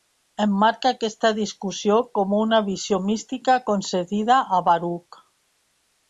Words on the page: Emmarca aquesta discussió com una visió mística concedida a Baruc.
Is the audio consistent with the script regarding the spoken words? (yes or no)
yes